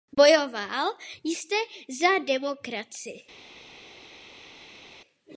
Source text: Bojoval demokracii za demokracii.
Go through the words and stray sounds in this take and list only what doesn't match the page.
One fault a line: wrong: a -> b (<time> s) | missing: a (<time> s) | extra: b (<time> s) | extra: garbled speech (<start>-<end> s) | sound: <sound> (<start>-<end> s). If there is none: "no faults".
wrong: demokracii -> jste (1.2 s)